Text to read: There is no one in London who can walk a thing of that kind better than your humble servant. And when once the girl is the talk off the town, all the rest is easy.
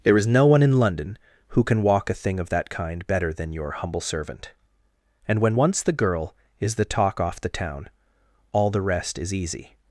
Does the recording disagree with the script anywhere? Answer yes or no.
no